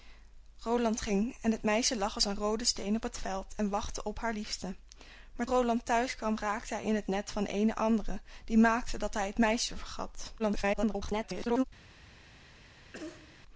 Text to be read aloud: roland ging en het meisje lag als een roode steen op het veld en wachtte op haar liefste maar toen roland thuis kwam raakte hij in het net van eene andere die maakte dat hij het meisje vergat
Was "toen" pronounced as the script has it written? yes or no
no